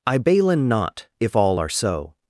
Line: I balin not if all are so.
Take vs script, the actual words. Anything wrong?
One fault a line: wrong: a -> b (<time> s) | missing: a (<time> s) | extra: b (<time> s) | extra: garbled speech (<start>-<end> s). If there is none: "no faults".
no faults